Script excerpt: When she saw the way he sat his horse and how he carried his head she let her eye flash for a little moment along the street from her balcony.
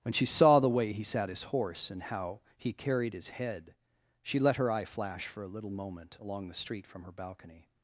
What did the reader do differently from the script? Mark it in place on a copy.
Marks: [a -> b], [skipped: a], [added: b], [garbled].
When she saw the way he sat his horse and how he carried his head she let her eye flash for a little moment along the street from her balcony.